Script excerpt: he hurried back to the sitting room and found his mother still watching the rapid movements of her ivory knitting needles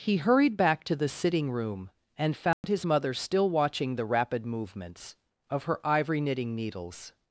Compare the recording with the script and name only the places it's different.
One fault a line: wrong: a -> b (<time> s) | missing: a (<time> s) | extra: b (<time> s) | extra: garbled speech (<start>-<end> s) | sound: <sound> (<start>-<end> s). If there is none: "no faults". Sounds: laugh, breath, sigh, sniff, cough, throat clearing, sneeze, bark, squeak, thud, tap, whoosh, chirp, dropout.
sound: dropout (2.5-2.6 s)